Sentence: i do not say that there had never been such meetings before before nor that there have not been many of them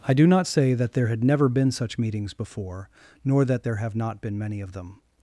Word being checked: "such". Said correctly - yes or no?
yes